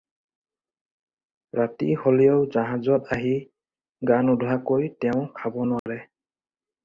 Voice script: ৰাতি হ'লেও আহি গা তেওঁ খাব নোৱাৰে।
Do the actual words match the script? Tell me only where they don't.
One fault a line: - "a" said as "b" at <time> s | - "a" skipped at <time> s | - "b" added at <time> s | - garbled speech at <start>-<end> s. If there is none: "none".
- "জাহাজত" added at 2.5 s
- "নোধোৱাকৈ" added at 4.2 s